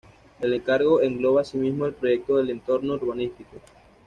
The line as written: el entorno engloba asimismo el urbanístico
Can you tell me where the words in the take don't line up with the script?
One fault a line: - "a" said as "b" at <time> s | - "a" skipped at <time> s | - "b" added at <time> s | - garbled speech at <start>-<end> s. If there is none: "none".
- "entorno" said as "encargo" at 0.5 s
- "proyecto del entorno" added at 1.9 s